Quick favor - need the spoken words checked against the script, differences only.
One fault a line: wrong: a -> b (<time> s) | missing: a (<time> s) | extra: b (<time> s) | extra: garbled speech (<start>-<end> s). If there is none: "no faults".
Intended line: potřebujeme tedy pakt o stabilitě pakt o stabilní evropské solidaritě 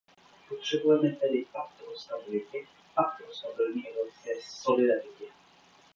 no faults